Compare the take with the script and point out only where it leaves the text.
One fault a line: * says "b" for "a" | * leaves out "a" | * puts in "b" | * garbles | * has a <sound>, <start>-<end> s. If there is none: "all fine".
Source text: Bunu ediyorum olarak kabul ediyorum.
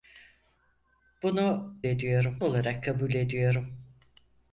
all fine